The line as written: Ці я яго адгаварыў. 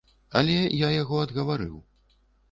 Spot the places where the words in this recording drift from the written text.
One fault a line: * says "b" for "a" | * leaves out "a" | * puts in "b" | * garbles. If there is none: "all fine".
* says "Але" for "Ці"